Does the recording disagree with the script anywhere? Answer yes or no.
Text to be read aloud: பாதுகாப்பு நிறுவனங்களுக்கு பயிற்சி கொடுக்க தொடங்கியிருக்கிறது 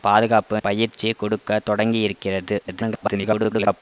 yes